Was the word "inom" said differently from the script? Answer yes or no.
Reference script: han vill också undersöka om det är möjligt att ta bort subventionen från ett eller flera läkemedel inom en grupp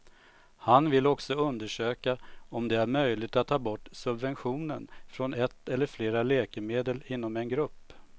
no